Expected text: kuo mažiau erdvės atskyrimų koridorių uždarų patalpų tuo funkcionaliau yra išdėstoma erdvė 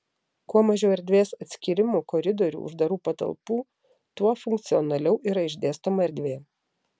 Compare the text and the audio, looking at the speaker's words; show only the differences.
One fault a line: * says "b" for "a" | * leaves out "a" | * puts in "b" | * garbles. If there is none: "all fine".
all fine